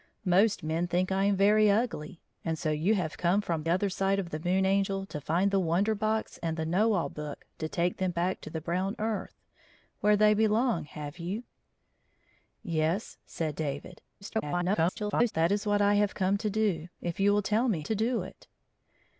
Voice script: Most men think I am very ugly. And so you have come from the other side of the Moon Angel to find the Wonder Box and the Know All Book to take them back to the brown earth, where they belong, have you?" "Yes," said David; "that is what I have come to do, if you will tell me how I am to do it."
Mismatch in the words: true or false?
true